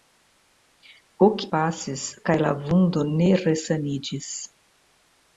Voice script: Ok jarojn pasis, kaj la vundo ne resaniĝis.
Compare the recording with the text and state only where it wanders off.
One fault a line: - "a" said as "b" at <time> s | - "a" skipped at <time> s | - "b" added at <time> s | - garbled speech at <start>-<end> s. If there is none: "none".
- "jarojn" skipped at 1.4 s